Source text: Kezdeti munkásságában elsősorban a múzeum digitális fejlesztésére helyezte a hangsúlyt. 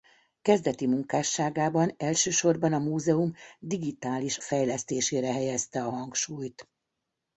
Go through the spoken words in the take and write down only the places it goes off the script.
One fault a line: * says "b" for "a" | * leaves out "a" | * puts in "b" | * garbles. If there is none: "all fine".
all fine